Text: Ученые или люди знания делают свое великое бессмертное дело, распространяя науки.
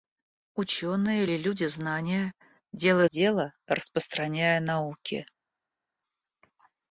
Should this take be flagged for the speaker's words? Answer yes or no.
yes